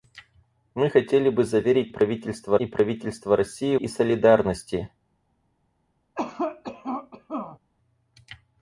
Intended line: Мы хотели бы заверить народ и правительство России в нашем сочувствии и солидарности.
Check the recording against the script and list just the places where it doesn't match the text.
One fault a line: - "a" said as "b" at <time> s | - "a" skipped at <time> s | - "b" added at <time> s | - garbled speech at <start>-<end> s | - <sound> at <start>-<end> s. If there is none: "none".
- "народ" said as "правительство" at 1.9 s
- "в нашем сочувствии" skipped at 3.8 s
- cough at 6.1-7.6 s